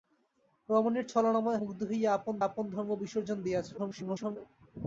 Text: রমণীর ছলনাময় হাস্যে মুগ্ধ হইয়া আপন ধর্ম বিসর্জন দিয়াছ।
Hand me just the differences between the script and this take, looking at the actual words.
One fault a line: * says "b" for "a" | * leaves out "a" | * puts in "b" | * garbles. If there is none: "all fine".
* leaves out "হাস্যে"
* puts in "আপন"
* garbles